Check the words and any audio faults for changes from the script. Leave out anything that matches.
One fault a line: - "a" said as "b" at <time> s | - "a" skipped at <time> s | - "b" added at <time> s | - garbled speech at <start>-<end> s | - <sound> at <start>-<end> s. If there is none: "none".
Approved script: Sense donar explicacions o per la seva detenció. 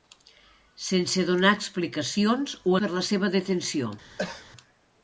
- cough at 4.2-4.5 s